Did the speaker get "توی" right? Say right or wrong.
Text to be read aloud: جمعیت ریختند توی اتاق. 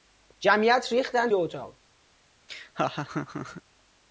wrong